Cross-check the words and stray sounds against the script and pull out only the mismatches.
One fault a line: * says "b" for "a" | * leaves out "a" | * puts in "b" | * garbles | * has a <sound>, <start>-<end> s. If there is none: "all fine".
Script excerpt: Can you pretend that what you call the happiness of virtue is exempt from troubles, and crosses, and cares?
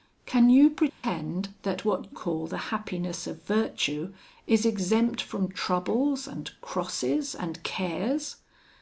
* has a dropout, 0.9-1.0 s
* leaves out "you"